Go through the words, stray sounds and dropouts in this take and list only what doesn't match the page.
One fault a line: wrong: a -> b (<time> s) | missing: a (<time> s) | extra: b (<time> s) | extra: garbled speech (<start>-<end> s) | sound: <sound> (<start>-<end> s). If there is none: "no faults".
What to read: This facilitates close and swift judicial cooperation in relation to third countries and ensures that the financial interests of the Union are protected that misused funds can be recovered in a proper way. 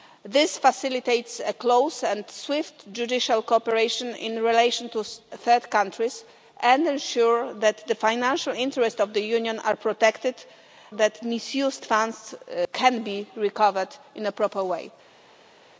no faults